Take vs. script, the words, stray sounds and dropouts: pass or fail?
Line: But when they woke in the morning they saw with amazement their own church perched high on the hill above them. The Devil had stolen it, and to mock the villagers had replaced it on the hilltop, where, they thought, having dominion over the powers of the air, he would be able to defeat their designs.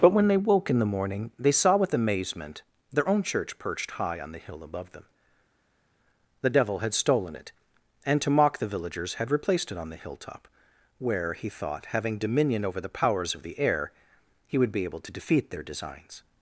fail